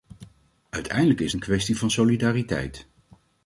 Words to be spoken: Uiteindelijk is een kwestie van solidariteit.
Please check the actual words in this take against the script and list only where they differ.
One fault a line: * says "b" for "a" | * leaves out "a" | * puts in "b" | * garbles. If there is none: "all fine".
all fine